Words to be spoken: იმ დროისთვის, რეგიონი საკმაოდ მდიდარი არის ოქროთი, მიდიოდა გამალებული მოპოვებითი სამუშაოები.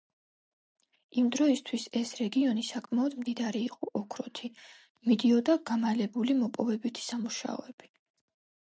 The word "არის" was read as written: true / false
false